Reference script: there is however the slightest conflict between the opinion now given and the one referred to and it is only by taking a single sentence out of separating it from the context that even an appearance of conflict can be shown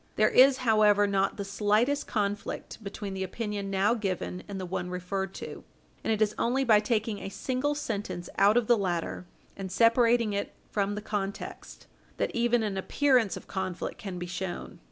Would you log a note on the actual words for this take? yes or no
yes